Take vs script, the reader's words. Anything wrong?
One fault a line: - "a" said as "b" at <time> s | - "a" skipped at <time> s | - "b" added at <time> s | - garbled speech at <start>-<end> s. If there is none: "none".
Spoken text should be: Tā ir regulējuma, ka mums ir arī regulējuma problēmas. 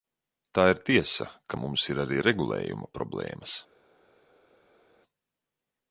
- "regulējuma" said as "tiesa" at 0.9 s